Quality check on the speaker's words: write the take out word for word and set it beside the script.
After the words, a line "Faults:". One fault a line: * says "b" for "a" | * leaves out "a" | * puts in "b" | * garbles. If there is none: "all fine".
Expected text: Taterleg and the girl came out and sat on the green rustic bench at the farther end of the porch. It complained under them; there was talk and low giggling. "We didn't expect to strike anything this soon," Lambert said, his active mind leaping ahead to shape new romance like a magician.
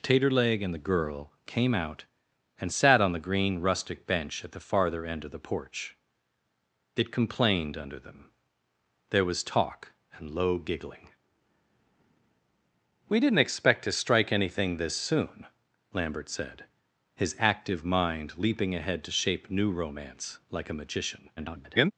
Taterleg and the girl came out and sat on the green rustic bench at the farther end of the porch. It complained under them; there was talk and low giggling. "We didn't expect to strike anything this soon," Lambert said, his active mind leaping ahead to shape new romance like a magician. [garbled]
Faults:
* garbles